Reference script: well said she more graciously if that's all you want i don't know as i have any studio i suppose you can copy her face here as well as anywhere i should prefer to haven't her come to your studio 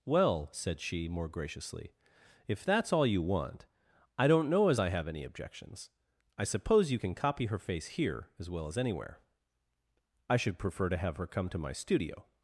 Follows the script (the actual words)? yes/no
no